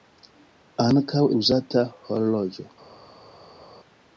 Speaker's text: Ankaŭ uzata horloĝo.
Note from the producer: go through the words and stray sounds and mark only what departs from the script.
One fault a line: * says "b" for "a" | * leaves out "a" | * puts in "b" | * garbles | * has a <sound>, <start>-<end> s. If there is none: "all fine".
all fine